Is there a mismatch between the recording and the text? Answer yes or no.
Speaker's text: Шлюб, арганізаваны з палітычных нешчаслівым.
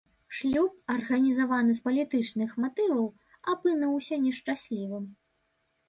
yes